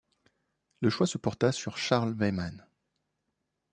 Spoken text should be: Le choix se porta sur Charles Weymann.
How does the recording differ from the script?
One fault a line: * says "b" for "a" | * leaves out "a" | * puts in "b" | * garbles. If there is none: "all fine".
all fine